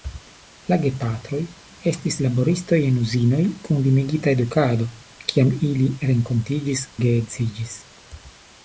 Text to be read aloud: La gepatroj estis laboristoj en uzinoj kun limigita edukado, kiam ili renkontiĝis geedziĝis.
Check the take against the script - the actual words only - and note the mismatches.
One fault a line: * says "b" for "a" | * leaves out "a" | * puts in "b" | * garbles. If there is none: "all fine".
all fine